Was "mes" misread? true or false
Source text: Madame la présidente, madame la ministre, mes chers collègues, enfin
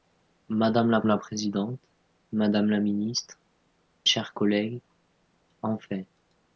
true